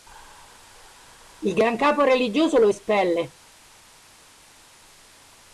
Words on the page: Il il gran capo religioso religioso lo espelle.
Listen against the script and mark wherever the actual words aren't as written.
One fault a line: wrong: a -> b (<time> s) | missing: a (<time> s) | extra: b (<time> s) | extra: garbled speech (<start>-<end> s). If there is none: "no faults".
missing: il (1.6 s)
missing: religioso (2.6 s)